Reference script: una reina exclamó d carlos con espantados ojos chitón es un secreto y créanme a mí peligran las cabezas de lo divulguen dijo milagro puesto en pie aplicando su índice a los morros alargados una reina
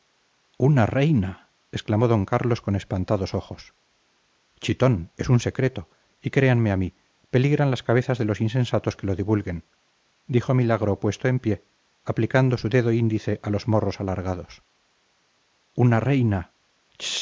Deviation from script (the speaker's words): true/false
true